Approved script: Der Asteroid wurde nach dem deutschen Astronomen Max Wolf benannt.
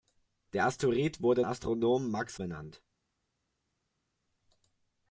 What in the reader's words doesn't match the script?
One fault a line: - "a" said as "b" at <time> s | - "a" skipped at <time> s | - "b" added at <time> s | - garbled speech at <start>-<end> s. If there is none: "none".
- "nach dem deutschen" skipped at 1.4 s
- "Wolf" skipped at 2.4 s